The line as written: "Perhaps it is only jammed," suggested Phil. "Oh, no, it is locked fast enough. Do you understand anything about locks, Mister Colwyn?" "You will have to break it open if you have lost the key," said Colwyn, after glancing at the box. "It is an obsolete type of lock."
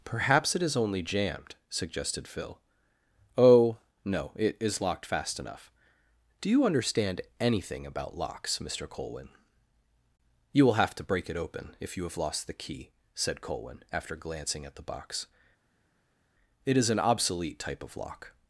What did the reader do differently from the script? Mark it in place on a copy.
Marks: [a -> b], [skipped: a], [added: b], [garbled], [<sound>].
"Perhaps it is only jammed," suggested Phil. "Oh, no, it is locked fast enough. Do you understand anything about locks, Mister Colwyn?" "You will have to break it open if you have lost the key," said Colwyn, after glancing at the box. "It is an obsolete type of lock."